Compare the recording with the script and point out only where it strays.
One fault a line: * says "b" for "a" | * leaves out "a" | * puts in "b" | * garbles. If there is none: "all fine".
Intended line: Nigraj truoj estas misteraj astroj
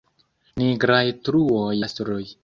* leaves out "estas misteraj"